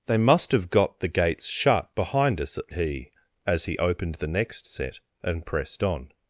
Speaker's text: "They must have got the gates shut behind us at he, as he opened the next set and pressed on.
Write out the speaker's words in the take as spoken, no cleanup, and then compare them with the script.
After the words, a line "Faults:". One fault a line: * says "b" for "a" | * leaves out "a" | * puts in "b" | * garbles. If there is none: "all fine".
"They must have got the gates shut behind us at he, as he opened the next set and pressed on.
Faults:
all fine